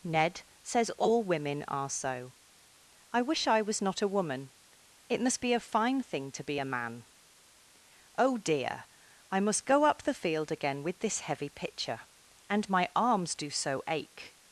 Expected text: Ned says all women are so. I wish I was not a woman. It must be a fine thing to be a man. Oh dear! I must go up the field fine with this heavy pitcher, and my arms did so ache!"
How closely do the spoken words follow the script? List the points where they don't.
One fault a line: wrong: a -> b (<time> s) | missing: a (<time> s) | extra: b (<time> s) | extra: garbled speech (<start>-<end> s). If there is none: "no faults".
wrong: fine -> again (10.5 s)
wrong: did -> do (13.3 s)